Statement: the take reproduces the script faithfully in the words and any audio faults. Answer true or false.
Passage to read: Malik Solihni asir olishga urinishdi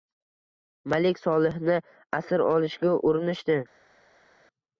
true